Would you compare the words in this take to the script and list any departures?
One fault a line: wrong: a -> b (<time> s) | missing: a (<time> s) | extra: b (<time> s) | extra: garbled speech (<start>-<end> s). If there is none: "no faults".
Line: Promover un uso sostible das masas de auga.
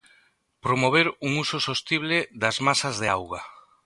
no faults